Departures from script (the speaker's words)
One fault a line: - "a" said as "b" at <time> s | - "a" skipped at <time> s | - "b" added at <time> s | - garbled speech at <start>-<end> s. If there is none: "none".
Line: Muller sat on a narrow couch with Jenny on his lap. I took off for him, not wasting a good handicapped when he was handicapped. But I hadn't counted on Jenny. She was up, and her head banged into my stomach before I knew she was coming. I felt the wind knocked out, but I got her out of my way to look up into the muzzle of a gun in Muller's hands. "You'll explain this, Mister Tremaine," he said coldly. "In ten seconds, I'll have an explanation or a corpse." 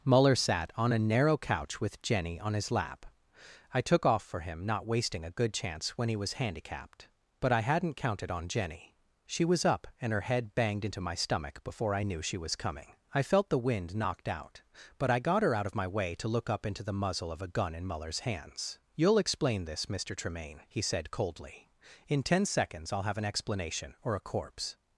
- "handicapped" said as "chance" at 5.5 s